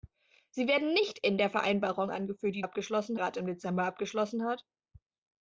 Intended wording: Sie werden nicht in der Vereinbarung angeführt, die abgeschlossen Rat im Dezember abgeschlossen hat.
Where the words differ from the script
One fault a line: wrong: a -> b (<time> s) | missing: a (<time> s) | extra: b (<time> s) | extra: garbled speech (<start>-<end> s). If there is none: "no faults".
no faults